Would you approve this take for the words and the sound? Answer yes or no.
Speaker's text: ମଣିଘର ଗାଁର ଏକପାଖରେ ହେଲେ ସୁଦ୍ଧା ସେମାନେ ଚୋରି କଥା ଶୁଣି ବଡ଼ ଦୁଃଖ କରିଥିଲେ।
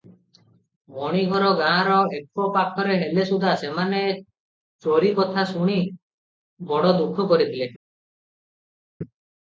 yes